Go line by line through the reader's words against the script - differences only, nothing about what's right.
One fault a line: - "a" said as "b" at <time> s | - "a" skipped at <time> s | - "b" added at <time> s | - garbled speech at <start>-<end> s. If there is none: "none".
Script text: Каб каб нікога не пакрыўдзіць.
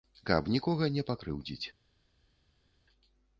- "каб" skipped at 0.5 s